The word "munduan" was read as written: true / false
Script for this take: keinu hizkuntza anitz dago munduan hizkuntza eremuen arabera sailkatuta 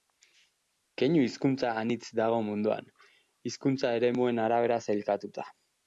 true